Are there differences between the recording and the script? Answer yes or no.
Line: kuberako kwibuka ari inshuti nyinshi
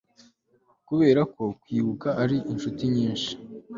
no